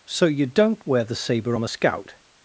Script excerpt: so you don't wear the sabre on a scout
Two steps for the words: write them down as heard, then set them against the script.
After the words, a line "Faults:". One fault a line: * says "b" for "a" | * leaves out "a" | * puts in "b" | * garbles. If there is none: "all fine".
so you don't wear the sabre on a scout
Faults:
all fine